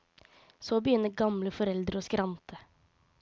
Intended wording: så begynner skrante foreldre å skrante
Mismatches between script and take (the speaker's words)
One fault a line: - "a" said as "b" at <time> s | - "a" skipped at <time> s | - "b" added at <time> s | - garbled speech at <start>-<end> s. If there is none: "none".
- "skrante" said as "gamle" at 1.2 s